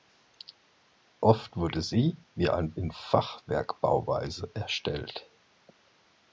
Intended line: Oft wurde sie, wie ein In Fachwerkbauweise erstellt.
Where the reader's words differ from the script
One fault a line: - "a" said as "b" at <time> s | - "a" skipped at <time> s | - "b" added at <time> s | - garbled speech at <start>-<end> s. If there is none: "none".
none